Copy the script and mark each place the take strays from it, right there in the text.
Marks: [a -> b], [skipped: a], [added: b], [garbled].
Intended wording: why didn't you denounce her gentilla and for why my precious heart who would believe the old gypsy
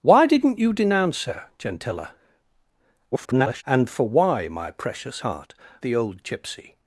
why didn't you denounce her gentilla [garbled] and for why my precious heart [skipped: who would believe] the old gypsy